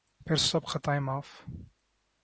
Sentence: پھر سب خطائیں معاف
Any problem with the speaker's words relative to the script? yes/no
no